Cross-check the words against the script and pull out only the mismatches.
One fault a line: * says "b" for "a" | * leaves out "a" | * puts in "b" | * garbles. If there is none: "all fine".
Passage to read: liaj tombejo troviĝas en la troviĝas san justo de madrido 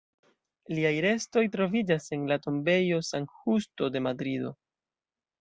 * says "restoj" for "tombejo"
* says "tombejo" for "troviĝas"